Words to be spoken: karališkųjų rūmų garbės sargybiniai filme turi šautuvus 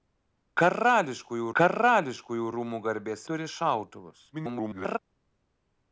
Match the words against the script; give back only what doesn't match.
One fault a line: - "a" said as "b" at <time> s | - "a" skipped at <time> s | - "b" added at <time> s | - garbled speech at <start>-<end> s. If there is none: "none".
- "karališkųjų" added at 1.6 s
- "sargybiniai filme" skipped at 3.2 s
- garbled speech at 4.3-5.0 s